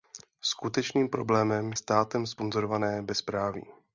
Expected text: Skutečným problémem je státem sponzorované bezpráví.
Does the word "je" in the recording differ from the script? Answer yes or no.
yes